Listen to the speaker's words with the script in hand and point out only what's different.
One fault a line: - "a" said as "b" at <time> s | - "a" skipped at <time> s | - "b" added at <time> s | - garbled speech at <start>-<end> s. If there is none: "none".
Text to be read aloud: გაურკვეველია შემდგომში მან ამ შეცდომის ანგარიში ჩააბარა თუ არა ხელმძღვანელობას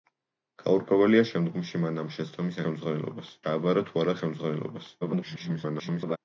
- "ანგარიში" said as "ხელმძღვანელობას" at 2.7 s
- garbled speech at 5.0-6.2 s